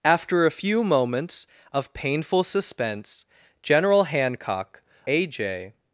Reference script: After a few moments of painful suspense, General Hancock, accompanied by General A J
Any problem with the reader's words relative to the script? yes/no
yes